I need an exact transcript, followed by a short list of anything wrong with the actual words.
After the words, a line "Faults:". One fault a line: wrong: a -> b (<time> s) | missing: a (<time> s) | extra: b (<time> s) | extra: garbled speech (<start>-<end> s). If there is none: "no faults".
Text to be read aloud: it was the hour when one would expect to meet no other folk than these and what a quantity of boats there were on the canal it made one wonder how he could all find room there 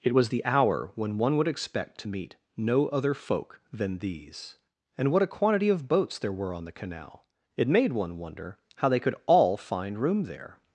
it was the hour when one would expect to meet no other folk than these and what a quantity of boats there were on the canal it made one wonder how they could all find room there
Faults:
wrong: he -> they (8.9 s)